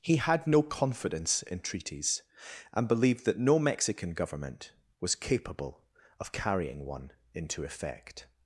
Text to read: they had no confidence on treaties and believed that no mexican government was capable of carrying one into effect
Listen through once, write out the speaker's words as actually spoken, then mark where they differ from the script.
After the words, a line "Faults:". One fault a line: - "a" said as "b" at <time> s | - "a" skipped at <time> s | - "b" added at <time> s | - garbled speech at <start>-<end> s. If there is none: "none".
he had no confidence in treaties and believed that no mexican government was capable of carrying one into effect
Faults:
- "they" said as "he" at 0.0 s
- "on" said as "in" at 1.4 s